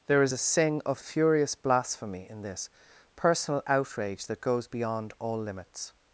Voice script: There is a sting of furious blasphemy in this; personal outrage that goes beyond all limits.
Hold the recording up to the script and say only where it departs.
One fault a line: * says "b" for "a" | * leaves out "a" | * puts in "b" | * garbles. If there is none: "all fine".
* says "sing" for "sting"